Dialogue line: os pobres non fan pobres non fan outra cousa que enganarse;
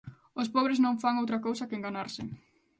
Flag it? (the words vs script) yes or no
yes